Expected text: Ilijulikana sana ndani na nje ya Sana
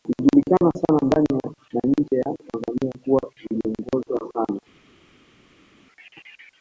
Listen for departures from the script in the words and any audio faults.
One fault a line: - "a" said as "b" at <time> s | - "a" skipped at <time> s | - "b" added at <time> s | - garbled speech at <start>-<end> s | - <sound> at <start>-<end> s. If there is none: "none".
- "Tanzania kuwa iliongozwa" added at 2.5 s